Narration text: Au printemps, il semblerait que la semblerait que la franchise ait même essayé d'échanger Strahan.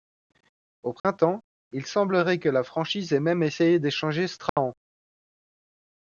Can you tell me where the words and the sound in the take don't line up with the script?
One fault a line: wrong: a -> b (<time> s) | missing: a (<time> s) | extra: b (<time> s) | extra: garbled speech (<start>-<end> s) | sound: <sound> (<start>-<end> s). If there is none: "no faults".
sound: dropout (1.0-1.0 s)
missing: semblerait que la (2.6 s)
sound: dropout (4.5-4.6 s)